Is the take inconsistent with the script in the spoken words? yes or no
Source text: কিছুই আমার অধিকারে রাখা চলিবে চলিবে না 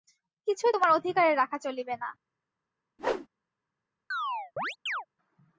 yes